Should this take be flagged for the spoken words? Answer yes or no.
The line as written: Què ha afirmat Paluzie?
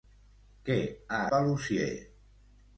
yes